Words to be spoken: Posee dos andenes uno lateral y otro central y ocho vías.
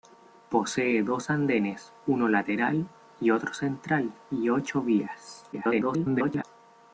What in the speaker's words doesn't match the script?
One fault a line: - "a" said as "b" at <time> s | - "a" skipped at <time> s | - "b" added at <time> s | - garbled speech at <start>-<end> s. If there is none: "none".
- garbled speech at 5.5-6.4 s